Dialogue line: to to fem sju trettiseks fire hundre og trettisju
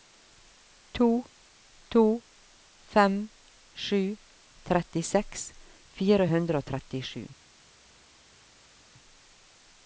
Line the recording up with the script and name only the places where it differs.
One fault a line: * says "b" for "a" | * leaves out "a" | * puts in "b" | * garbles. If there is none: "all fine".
all fine